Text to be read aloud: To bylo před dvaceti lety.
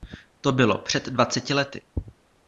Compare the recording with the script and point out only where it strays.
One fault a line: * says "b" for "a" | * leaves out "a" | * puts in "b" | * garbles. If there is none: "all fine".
all fine